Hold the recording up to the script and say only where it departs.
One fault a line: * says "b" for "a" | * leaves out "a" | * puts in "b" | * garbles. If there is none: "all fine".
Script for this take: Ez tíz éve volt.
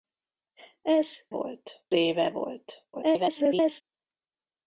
* says "volt" for "tíz"
* garbles